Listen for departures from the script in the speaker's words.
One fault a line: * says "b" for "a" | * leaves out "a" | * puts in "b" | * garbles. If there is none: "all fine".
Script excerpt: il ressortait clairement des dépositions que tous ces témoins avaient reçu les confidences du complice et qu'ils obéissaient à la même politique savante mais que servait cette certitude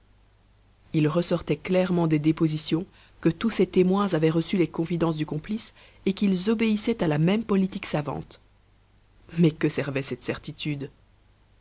all fine